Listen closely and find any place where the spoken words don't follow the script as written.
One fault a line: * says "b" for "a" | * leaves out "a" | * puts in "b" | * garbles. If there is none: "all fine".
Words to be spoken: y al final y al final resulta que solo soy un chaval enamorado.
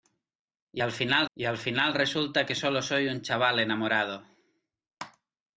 all fine